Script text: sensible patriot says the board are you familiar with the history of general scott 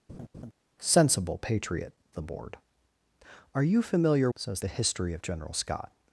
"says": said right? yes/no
no